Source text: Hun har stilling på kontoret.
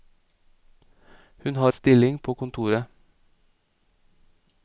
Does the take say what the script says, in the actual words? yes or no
yes